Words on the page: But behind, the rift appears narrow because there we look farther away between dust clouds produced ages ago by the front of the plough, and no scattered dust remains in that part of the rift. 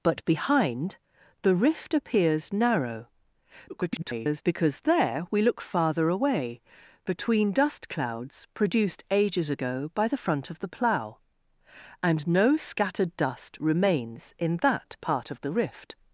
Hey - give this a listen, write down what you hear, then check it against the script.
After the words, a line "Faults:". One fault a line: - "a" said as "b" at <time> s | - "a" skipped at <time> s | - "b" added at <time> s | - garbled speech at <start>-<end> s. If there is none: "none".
But behind, the rift appears narrow [garbled] because there we look farther away between dust clouds produced ages ago by the front of the plough, and no scattered dust remains in that part of the rift.
Faults:
- garbled speech at 3.7-4.4 s